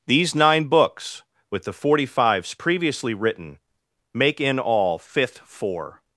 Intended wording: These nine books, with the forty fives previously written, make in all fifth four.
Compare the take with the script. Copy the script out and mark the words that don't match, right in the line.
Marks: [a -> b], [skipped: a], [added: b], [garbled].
These nine books, with the forty fives previously written, make in all fifth four.